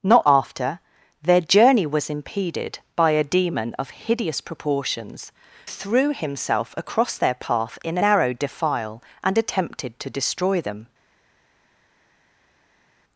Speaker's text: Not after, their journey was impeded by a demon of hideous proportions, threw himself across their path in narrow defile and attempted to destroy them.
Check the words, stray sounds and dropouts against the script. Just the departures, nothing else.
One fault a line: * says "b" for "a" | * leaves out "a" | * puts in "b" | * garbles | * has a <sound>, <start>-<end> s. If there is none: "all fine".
all fine